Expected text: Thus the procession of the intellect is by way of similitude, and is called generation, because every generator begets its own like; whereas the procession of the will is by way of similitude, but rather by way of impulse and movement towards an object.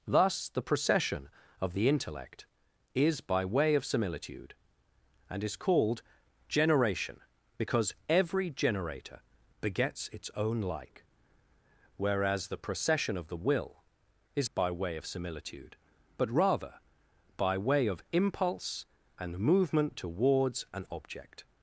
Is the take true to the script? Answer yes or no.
yes